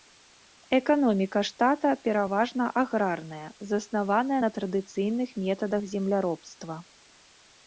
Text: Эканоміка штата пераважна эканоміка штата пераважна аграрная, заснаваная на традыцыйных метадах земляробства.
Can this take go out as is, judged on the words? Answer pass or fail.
fail